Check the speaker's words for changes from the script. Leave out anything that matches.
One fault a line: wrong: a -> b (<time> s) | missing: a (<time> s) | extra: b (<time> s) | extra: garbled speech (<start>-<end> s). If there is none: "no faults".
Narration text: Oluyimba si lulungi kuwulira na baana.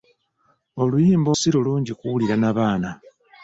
no faults